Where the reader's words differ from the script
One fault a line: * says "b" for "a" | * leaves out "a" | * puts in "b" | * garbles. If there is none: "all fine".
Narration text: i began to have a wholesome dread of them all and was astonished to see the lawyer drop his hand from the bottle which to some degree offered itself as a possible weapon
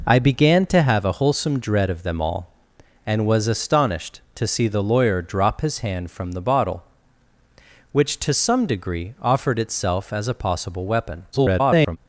* garbles